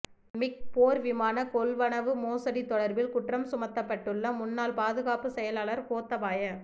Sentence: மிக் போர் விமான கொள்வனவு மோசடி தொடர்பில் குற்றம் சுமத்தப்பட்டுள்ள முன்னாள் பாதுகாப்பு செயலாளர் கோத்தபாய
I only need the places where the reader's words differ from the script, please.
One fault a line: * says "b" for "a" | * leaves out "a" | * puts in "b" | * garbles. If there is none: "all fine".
all fine